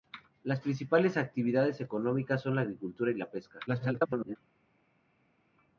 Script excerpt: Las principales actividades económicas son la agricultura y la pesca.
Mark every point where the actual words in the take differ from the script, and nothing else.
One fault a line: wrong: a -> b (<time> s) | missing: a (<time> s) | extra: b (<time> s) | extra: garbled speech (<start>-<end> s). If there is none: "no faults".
extra: garbled speech (3.7-4.4 s)